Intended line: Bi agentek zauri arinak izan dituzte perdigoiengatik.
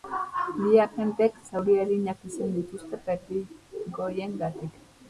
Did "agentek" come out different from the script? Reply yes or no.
no